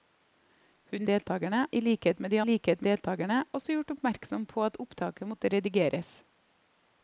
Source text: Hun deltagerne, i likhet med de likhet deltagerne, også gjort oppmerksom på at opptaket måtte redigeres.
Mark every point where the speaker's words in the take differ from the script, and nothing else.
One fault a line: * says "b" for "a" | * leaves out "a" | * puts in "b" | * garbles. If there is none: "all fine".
all fine